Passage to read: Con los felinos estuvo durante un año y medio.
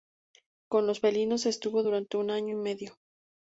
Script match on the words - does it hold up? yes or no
yes